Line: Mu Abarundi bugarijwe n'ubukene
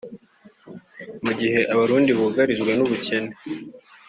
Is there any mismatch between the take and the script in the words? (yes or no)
yes